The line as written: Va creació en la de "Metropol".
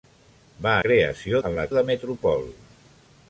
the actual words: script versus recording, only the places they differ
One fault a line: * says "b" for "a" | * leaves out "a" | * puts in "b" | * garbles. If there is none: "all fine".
all fine